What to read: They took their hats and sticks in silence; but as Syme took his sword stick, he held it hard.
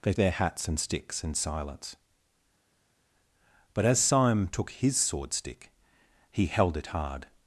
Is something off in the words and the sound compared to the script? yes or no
yes